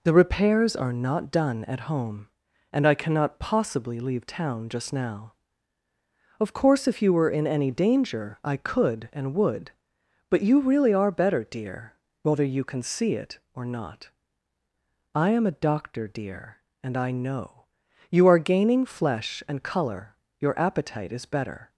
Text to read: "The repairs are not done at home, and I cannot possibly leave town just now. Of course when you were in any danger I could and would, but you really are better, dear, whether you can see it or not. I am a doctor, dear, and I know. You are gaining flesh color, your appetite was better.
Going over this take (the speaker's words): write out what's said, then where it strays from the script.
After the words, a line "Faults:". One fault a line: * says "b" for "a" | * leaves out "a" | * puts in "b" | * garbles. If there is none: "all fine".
"The repairs are not done at home, and I cannot possibly leave town just now. Of course if you were in any danger I could and would, but you really are better, dear, whether you can see it or not. I am a doctor, dear, and I know. You are gaining flesh and color, your appetite is better.
Faults:
* says "if" for "when"
* puts in "and"
* says "is" for "was"